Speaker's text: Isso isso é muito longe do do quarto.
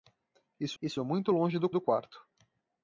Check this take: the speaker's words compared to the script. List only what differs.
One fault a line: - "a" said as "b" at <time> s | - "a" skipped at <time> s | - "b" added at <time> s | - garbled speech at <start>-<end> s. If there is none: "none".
none